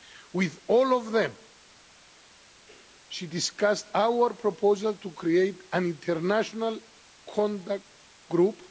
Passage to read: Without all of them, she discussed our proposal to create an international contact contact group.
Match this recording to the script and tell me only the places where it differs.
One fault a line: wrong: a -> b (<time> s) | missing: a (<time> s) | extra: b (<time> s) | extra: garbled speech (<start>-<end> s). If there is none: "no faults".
wrong: Without -> With (0.3 s)
missing: contact (7.8 s)